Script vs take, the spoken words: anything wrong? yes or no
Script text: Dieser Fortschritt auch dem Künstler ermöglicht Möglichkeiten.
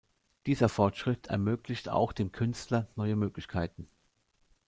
yes